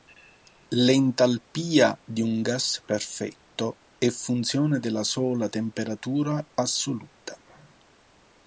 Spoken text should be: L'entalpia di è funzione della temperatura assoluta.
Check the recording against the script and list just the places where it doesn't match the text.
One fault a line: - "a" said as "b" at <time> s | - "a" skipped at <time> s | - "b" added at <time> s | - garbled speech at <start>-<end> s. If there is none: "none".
- "un gas perfetto" added at 2.2 s
- "sola" added at 5.0 s